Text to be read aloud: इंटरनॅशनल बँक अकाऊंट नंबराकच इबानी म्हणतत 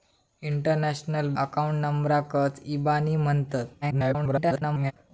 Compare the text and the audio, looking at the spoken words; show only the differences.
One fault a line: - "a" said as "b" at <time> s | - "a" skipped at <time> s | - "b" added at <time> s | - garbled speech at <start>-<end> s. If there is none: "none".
- "बँक" skipped at 1.3 s
- garbled speech at 3.8-4.9 s